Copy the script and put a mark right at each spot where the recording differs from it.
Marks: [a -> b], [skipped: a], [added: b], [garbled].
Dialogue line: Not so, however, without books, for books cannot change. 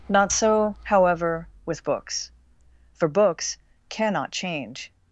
Not so, however, [without -> with] books, for books cannot change.